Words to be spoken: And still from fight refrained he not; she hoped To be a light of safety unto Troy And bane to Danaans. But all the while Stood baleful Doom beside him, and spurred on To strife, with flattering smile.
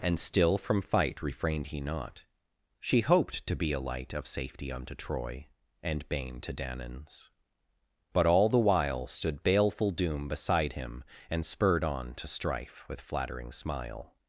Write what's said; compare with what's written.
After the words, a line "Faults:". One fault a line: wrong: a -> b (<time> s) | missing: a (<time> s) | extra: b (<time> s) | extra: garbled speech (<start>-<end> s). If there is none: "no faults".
And still from fight refrained he not; she hoped To be a light of safety unto Troy And bane to Danaans. But all the while Stood baleful Doom beside him, and spurred on To strife, with flattering smile.
Faults:
no faults